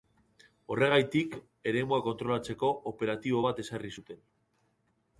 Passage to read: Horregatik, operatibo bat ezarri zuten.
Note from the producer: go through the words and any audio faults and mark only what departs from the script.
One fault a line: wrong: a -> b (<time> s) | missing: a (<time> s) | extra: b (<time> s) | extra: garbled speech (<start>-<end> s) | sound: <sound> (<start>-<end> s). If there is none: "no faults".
extra: eremua kontrolatzeko (1.7 s)